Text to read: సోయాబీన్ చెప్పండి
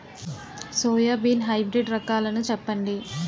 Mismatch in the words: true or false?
true